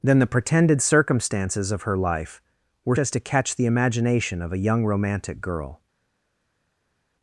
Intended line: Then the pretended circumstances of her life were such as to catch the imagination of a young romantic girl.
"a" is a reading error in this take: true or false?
false